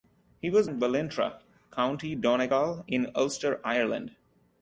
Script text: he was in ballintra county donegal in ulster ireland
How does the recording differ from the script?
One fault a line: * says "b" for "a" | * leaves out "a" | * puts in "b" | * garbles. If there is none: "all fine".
all fine